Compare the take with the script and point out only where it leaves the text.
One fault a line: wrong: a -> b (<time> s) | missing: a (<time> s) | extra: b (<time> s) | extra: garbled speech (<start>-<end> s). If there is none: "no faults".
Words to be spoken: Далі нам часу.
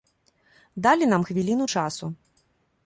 extra: хвіліну (1.2 s)